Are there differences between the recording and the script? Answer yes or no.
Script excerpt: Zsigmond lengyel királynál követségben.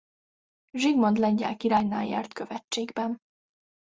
yes